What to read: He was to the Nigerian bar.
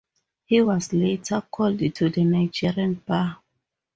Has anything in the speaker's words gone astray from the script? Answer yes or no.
yes